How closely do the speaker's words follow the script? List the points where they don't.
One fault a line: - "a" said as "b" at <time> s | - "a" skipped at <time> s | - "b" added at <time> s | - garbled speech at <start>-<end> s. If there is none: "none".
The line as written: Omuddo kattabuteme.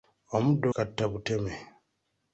none